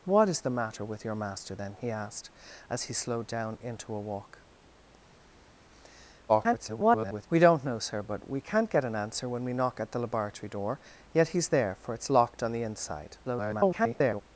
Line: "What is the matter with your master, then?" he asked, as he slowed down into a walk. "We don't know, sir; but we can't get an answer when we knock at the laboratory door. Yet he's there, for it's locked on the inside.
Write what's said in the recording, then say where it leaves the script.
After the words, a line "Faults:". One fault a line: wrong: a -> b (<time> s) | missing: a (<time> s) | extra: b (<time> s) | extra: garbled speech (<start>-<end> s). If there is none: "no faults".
"What is the matter with your master, then?" he asked, as he slowed down into a walk. [garbled] "We don't know, sir; but we can't get an answer when we knock at the laboratory door. Yet he's there, for it's locked on the inside. [garbled]
Faults:
extra: garbled speech (6.3-7.3 s)
extra: garbled speech (13.2-14.2 s)